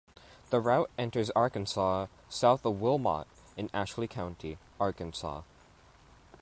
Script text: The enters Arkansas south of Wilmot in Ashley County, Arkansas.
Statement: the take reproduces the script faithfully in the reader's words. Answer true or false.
false